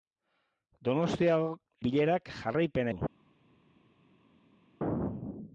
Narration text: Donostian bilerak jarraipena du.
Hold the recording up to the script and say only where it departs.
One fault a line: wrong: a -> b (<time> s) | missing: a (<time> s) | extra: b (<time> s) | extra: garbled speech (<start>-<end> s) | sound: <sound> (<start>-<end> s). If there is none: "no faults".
no faults